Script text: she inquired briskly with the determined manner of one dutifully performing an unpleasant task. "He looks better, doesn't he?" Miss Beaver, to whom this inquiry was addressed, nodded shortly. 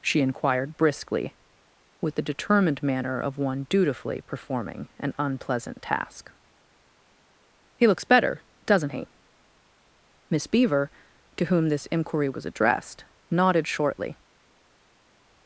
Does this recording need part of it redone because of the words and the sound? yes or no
no